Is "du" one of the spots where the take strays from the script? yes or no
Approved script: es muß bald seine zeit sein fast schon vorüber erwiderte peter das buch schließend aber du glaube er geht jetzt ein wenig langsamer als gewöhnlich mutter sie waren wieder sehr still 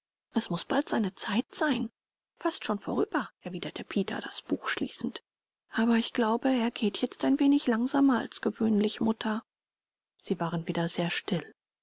yes